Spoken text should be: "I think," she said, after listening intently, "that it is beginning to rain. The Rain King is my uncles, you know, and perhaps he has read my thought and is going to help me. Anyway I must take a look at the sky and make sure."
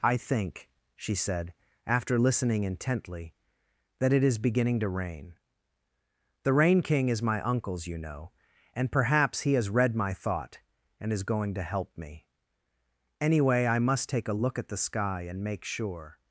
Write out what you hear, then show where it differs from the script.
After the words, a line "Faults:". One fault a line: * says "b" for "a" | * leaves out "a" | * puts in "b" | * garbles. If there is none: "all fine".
"I think," she said, after listening intently, "that it is beginning to rain. The Rain King is my uncles, you know, and perhaps he has read my thought and is going to help me. Anyway I must take a look at the sky and make sure."
Faults:
all fine